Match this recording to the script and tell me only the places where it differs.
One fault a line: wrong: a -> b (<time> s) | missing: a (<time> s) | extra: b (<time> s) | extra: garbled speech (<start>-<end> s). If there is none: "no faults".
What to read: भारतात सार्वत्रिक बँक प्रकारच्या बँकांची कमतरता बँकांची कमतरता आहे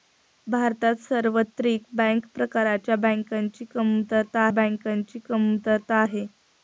no faults